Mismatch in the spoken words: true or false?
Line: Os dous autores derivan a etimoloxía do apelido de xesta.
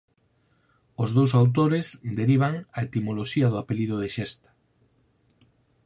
false